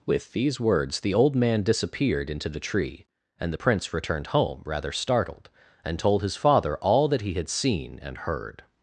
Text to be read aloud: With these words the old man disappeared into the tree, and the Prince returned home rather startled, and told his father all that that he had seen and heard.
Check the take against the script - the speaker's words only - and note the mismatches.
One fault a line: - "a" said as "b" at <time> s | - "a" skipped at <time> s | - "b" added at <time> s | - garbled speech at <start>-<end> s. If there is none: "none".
- "that" skipped at 7.2 s